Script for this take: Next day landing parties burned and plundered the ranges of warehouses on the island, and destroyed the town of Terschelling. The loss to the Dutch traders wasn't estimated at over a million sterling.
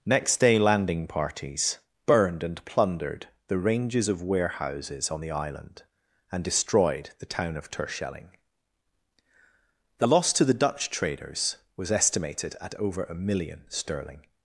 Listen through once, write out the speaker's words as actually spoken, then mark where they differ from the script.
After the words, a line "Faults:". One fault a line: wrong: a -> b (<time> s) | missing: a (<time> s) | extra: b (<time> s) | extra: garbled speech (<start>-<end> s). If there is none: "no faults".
Next day landing parties burned and plundered the ranges of warehouses on the island, and destroyed the town of Terschelling. The loss to the Dutch traders was estimated at over a million sterling.
Faults:
wrong: wasn't -> was (11.8 s)